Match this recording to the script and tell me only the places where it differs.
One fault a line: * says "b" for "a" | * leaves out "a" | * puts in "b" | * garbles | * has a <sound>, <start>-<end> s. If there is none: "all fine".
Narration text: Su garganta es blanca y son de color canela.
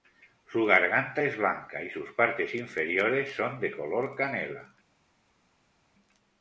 * puts in "sus partes inferiores"